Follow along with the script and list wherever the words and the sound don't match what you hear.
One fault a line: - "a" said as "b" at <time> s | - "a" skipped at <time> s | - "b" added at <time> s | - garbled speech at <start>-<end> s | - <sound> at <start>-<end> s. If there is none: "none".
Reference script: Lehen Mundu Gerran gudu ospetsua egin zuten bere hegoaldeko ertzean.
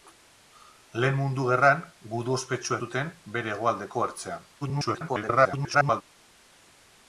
- "egin" skipped at 2.8 s
- garbled speech at 4.6-6.0 s